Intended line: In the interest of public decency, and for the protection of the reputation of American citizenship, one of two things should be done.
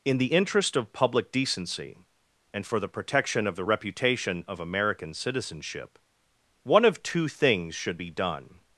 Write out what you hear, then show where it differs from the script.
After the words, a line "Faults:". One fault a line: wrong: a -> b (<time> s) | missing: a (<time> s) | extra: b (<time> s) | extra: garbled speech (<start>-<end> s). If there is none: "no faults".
In the interest of public decency, and for the protection of the reputation of American citizenship, one of two things should be done.
Faults:
no faults